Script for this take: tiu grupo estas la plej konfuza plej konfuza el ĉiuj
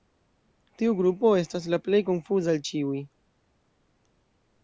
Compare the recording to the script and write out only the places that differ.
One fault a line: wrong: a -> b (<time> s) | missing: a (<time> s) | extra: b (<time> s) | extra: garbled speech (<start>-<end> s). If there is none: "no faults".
missing: plej konfuza (2.5 s)